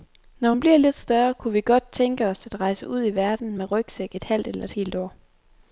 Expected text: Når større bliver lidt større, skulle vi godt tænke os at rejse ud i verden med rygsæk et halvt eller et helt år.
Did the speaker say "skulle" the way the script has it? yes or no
no